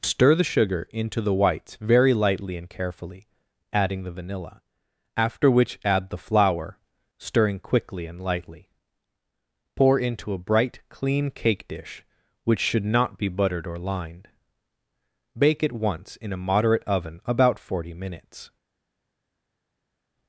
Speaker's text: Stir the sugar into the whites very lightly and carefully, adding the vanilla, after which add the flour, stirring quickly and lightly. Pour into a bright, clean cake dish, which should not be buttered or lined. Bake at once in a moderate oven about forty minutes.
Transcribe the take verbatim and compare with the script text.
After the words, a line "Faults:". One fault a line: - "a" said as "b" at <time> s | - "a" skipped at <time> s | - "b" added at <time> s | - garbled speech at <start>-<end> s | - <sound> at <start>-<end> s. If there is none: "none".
Stir the sugar into the whites very lightly and carefully, adding the vanilla, after which add the flour, stirring quickly and lightly. Pour into a bright, clean cake dish, which should not be buttered or lined. Bake at once in a moderate oven about forty minutes.
Faults:
none